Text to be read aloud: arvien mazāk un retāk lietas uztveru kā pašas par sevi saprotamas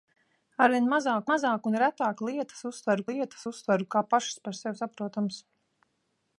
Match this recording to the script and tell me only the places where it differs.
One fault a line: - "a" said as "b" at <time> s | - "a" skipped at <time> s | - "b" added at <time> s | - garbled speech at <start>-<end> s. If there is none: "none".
- "mazāk" added at 1.3 s
- "lietas uztveru" added at 3.1 s